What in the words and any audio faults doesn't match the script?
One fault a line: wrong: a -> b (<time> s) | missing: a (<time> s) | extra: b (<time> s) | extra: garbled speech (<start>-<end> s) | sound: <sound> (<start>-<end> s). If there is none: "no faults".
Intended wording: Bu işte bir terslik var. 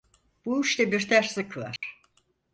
sound: dropout (1.8-1.8 s)